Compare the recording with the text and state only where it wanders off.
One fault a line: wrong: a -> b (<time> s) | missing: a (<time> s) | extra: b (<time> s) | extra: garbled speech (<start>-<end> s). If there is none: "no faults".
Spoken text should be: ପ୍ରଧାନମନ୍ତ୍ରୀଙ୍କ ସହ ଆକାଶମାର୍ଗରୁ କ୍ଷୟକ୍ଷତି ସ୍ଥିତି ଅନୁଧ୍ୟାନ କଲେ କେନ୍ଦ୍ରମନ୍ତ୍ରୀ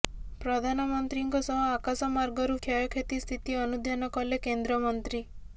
no faults